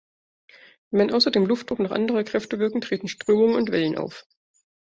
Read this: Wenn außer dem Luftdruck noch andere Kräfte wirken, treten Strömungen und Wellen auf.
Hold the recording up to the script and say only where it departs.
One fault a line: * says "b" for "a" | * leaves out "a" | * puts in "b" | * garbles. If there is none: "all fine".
all fine